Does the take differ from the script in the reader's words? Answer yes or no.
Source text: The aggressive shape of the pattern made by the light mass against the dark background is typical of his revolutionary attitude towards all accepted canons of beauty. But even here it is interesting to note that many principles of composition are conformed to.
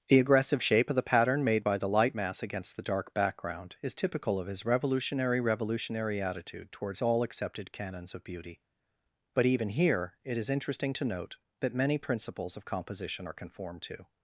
yes